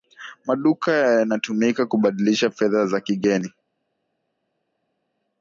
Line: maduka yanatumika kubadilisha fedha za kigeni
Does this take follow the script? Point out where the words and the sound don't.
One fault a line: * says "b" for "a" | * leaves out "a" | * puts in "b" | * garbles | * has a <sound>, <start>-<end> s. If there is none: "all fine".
all fine